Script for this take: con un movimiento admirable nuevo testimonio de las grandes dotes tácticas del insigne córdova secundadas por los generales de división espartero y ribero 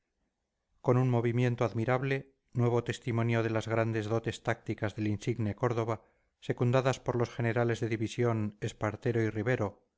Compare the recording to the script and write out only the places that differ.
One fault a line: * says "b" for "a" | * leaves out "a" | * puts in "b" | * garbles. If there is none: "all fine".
all fine